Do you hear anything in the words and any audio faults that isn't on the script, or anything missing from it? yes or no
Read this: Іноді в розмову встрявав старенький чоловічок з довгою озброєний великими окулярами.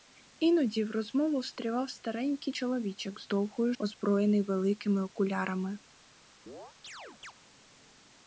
yes